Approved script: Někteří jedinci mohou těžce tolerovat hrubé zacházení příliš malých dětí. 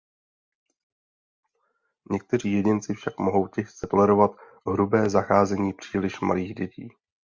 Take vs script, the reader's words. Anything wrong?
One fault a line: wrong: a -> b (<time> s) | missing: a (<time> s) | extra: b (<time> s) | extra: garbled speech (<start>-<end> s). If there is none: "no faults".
extra: však (2.9 s)